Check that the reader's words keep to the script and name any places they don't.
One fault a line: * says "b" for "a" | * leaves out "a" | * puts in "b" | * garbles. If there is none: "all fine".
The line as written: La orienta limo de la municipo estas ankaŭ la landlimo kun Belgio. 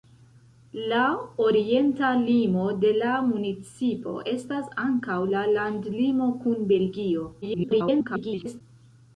* garbles